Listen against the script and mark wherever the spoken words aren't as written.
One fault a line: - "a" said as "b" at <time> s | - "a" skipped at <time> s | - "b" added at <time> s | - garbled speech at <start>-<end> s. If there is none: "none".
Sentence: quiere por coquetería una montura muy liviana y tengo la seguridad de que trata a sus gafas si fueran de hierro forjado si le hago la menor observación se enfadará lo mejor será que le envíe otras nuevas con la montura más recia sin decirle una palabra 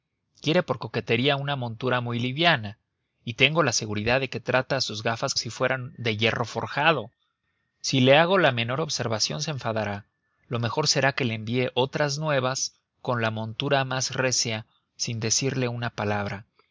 none